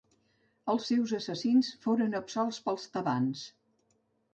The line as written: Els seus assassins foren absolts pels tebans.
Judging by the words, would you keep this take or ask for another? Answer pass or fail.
pass